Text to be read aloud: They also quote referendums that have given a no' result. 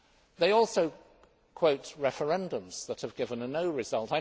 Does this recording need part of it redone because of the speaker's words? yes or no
no